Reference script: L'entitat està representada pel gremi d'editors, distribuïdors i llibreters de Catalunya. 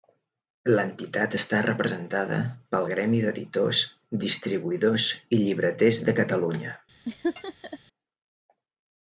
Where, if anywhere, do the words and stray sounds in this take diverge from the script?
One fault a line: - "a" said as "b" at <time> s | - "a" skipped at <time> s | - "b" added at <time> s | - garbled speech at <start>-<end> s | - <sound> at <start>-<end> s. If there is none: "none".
- laugh at 7.1-7.8 s